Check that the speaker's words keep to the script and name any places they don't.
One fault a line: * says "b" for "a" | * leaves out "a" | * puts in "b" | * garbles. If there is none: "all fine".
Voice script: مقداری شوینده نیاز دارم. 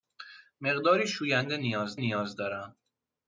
* puts in "نیاز"